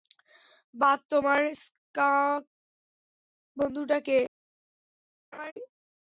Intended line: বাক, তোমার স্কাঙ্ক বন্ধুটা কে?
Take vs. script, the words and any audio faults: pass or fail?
fail